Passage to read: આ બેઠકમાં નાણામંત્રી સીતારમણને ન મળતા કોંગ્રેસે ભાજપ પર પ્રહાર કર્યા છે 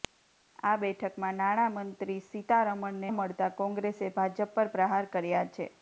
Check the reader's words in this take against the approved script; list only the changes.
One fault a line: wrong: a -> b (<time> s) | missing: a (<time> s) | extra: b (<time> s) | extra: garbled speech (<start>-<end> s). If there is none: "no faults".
missing: ન (3.1 s)